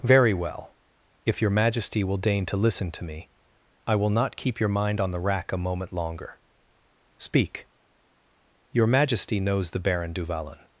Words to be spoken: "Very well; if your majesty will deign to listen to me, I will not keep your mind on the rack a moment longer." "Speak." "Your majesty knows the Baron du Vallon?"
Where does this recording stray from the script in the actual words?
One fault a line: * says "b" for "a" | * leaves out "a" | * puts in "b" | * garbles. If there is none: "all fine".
all fine